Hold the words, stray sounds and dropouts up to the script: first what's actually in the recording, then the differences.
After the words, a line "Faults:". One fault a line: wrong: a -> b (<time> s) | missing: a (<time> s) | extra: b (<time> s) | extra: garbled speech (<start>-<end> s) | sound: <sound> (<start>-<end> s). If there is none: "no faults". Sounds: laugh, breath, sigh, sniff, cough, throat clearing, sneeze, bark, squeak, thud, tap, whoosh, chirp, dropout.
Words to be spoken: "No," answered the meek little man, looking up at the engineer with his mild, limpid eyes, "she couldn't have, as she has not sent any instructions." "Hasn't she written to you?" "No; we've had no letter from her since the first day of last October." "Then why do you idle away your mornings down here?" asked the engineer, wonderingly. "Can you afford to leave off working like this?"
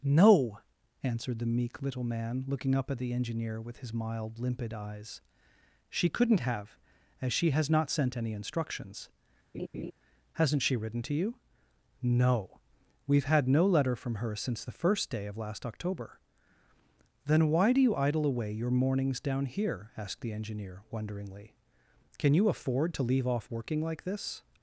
"No," answered the meek little man, looking up at the engineer with his mild, limpid eyes, "she couldn't have, as she has not sent any instructions." "Hasn't she written to you?" "No; we've had no letter from her since the first day of last October." "Then why do you idle away your mornings down here?" asked the engineer, wonderingly. "Can you afford to leave off working like this?"
Faults:
sound: laugh (9.5-9.9 s)